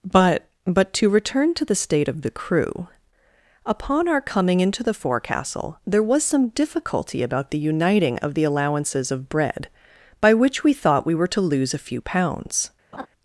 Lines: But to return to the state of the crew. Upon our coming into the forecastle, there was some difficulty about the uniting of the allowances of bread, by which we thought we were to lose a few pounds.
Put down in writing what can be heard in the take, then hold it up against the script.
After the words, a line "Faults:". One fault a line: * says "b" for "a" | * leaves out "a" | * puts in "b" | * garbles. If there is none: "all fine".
But but to return to the state of the crew. Upon our coming into the forecastle, there was some difficulty about the uniting of the allowances of bread, by which we thought we were to lose a few pounds.
Faults:
* puts in "but"